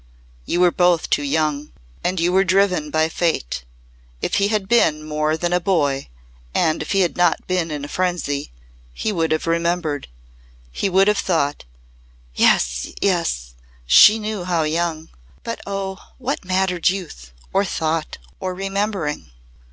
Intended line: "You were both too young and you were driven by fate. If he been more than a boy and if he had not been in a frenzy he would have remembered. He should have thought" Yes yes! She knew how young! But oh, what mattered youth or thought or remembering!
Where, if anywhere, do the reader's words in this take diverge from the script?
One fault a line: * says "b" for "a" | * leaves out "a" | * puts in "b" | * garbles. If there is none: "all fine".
* puts in "had"
* says "would" for "should"